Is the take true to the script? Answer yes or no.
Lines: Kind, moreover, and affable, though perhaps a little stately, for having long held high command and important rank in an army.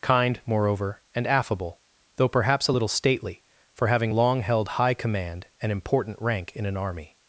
yes